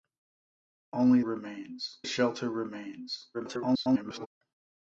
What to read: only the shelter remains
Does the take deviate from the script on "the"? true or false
true